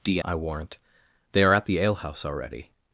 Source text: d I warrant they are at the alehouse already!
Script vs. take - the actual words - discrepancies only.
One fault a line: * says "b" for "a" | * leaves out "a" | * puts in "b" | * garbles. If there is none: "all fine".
all fine